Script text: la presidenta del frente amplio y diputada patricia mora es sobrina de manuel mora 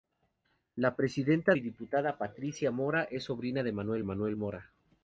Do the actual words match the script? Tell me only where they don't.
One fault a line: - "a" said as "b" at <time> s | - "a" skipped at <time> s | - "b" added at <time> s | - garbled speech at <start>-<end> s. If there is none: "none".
- "del frente amplio" skipped at 1.5 s
- "manuel" added at 4.0 s